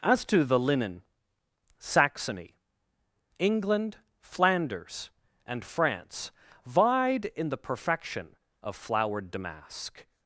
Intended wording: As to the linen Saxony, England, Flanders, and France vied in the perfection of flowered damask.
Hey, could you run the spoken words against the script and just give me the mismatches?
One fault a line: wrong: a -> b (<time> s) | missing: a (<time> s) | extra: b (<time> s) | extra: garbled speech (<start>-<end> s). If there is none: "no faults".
no faults